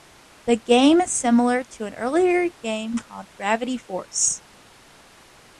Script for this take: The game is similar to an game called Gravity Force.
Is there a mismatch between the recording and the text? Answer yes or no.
yes